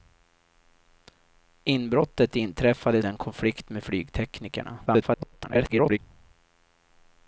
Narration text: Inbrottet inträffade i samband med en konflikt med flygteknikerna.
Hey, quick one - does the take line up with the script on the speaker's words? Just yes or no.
no